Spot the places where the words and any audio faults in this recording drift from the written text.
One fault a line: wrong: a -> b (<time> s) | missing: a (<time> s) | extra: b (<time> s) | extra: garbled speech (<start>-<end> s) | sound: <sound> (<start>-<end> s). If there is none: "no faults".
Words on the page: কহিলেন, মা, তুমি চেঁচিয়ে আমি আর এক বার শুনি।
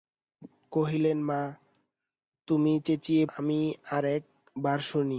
no faults